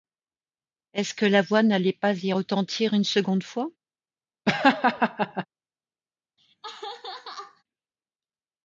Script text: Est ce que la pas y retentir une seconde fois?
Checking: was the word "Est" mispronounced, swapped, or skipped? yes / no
no